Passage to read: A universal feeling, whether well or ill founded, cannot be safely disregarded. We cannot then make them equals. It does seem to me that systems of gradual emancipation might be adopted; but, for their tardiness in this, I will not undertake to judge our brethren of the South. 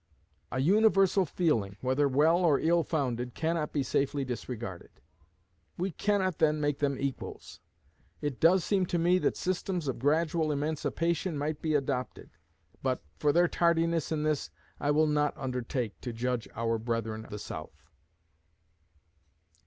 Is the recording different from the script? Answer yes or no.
yes